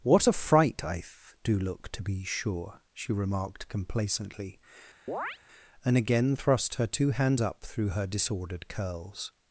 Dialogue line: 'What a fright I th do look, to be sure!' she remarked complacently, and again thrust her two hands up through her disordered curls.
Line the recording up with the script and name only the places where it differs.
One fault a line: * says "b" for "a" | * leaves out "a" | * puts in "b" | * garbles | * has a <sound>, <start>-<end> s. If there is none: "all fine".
* has a chirp, 5.1-5.4 s